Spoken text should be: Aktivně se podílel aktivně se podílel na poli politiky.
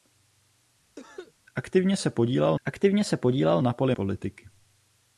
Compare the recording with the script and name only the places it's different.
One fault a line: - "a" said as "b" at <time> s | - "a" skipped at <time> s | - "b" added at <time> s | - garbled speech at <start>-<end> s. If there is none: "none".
none